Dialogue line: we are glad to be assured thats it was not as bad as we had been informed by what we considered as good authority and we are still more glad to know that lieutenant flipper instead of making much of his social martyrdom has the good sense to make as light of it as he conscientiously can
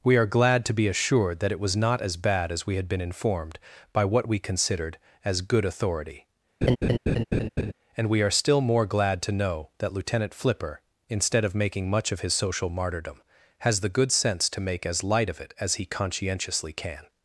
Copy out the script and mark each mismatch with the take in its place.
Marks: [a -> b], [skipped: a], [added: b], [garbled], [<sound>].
we are glad to be assured [thats -> that] it was not as bad as we had been informed by what we considered as good authority [laugh] and we are still more glad to know that lieutenant flipper instead of making much of his social martyrdom has the good sense to make as light of it as he conscientiously can